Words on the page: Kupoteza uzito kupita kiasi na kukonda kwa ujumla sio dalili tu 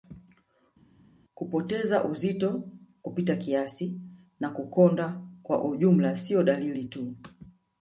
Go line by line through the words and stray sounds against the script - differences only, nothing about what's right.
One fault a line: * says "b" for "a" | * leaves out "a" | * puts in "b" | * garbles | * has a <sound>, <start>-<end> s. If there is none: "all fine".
all fine